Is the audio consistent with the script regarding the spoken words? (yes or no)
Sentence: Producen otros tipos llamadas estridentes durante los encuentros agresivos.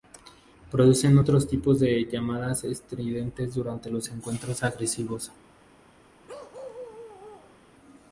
no